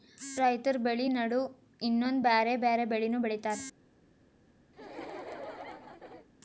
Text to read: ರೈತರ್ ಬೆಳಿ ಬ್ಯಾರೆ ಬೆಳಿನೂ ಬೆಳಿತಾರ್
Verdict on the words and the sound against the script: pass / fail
fail